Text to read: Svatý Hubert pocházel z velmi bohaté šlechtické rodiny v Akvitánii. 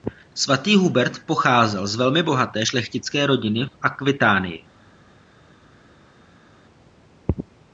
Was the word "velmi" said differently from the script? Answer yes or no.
no